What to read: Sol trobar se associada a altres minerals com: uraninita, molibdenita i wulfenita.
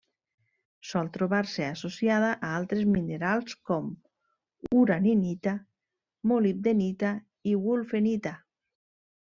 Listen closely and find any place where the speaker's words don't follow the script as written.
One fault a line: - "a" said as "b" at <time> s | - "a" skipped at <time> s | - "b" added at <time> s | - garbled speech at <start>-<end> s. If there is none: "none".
none